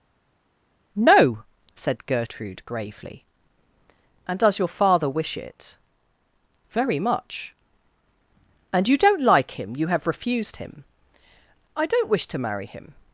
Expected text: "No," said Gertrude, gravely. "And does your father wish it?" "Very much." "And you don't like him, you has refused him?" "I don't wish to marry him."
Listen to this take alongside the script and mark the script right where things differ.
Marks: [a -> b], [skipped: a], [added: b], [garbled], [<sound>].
"No," said Gertrude, gravely. "And does your father wish it?" "Very much." "And you don't like him, you [has -> have] refused him?" "I don't wish to marry him."